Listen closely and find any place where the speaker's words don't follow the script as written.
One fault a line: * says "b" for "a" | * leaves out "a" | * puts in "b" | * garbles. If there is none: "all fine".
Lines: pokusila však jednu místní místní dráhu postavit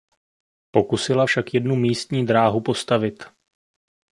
* leaves out "místní"